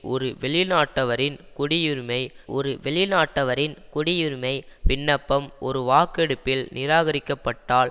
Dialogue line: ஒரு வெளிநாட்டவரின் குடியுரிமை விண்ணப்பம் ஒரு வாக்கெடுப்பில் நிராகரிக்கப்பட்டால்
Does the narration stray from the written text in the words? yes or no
yes